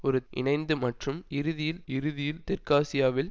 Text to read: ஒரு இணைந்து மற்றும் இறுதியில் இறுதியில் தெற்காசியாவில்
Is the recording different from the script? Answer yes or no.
no